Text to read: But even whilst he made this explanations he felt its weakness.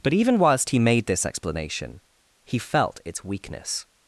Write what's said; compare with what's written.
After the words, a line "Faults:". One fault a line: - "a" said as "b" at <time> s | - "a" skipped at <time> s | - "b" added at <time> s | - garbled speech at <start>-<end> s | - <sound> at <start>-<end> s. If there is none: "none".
But even whilst he made this explanation he felt its weakness.
Faults:
- "explanations" said as "explanation" at 1.2 s